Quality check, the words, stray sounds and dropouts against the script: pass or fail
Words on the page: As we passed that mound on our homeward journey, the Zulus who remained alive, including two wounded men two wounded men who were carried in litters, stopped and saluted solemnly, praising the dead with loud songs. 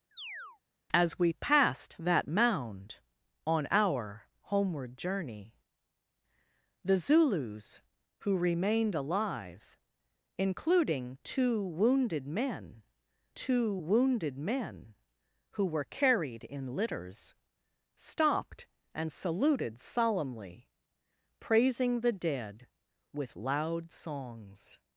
fail